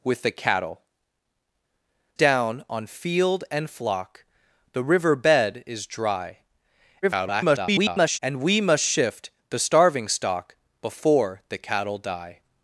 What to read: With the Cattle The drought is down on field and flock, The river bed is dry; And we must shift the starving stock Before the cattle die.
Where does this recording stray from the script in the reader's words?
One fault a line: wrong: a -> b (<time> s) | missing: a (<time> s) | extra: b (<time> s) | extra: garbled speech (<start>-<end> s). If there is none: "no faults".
missing: The drought is (0.8 s)
extra: garbled speech (7.0-8.2 s)